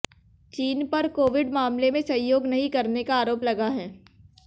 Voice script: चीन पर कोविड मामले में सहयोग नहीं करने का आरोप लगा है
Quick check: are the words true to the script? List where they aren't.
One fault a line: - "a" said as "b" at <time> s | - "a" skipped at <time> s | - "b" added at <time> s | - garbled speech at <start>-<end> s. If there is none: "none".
none